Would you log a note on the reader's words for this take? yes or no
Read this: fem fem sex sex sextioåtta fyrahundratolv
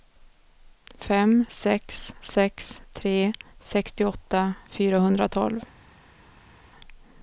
yes